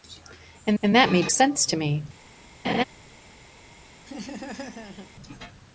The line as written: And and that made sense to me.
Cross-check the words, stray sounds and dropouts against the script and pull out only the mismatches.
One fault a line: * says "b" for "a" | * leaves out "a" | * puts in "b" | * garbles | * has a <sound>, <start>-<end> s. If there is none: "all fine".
* has a laugh, 2.6-2.8 s
* has a laugh, 4.0-5.1 s